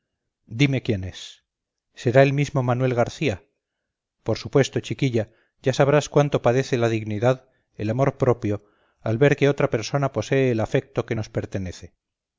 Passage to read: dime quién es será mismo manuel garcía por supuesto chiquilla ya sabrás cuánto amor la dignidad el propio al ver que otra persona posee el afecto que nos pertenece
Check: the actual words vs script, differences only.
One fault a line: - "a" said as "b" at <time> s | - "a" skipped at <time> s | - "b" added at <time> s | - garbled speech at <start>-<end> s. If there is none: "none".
- "el" added at 2.2 s
- "amor" said as "padece" at 6.4 s
- "amor" added at 7.9 s